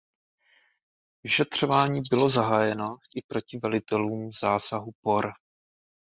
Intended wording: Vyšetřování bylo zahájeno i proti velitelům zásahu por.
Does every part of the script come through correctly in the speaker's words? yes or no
yes